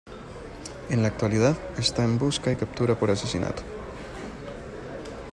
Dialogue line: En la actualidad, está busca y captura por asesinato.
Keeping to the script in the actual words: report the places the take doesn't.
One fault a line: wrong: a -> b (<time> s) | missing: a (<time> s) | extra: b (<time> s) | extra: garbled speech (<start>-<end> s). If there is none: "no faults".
extra: en (2.0 s)